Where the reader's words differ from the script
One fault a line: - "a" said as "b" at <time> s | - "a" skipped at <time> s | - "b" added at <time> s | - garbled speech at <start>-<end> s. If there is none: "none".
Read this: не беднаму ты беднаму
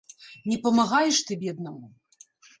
- "беднаму" said as "памагаеш" at 0.6 s